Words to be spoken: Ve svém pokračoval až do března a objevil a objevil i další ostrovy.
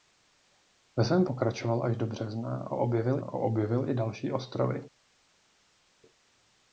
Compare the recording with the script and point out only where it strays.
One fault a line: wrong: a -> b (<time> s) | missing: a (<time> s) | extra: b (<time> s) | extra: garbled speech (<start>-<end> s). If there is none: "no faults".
no faults